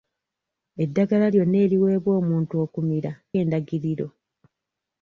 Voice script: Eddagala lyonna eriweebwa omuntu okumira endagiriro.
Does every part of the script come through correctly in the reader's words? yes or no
yes